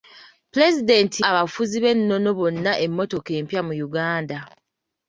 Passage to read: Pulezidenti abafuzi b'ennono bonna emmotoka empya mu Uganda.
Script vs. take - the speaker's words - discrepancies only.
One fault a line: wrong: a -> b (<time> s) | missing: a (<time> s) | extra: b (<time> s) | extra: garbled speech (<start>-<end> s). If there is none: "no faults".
no faults